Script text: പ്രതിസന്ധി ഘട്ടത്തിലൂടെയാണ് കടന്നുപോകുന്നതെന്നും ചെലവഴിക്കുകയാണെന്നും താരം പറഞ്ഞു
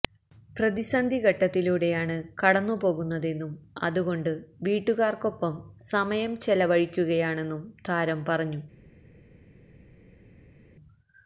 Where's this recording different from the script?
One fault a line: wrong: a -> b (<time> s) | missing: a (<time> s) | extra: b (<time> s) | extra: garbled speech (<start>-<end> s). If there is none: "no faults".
extra: അതുകൊണ്ട് വീട്ടുകാർക്കൊപ്പം സമയം (3.8 s)